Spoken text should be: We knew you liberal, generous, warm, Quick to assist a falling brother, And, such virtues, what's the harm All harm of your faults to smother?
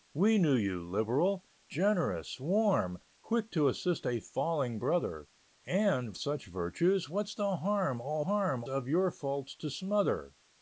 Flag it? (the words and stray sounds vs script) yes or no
no